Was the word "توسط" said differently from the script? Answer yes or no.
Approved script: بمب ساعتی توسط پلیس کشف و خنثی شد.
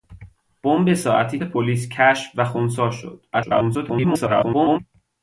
yes